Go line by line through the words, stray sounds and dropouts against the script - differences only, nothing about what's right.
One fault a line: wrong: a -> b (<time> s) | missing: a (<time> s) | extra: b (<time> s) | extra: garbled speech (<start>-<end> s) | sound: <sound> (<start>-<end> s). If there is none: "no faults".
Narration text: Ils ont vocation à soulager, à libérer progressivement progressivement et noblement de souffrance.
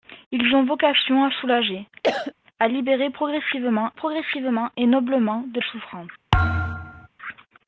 sound: cough (2.0-2.3 s)
sound: thud (6.3-7.1 s)